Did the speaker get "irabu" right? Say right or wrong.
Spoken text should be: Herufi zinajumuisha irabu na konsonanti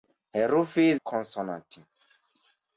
wrong